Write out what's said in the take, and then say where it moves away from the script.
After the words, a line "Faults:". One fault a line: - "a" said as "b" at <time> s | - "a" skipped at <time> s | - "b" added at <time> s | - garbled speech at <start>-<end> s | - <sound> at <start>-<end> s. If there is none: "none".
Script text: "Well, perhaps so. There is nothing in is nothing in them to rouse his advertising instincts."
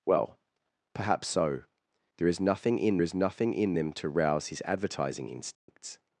"Well, perhaps so. There is nothing in is nothing in them to rouse his advertising instincts."
Faults:
- dropout at 5.5-5.7 s